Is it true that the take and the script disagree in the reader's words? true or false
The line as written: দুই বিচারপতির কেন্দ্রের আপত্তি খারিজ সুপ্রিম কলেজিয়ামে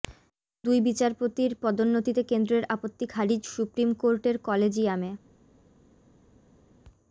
true